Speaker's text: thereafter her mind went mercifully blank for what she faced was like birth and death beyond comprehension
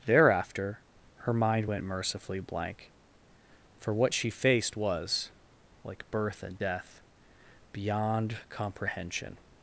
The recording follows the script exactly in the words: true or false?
true